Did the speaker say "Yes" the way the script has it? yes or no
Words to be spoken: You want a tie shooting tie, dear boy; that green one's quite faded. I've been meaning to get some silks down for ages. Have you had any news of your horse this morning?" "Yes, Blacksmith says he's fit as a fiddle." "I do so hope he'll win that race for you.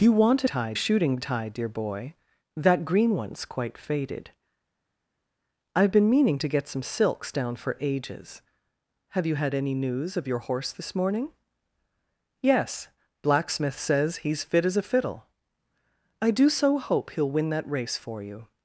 yes